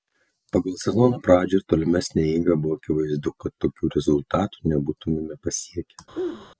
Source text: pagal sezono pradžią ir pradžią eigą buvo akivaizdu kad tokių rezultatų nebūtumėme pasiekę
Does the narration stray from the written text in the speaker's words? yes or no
yes